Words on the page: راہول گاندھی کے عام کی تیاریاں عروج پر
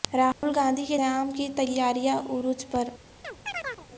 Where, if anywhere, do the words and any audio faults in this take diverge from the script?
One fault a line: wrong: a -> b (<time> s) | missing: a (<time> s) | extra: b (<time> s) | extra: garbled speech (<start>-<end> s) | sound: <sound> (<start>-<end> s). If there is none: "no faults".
sound: dropout (0.3-0.4 s)
sound: chirp (3.2-3.9 s)